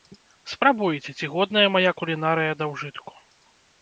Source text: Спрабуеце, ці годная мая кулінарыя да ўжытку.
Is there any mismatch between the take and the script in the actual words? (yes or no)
no